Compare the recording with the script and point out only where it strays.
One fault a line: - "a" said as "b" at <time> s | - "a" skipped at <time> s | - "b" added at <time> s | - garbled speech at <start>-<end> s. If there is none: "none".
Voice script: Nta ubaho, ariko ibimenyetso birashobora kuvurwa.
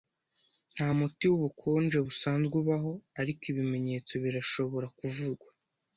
- "muti wubukonje busanzwe" added at 1.0 s